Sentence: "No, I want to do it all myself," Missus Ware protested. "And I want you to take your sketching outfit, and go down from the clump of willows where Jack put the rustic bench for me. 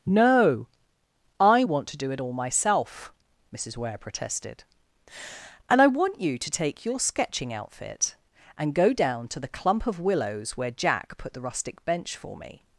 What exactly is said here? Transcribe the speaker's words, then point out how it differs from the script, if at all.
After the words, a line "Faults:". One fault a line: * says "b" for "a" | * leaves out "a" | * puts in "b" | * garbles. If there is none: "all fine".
"No, I want to do it all myself," Missus Ware protested. "And I want you to take your sketching outfit, and go down to the clump of willows where Jack put the rustic bench for me.
Faults:
* says "to" for "from"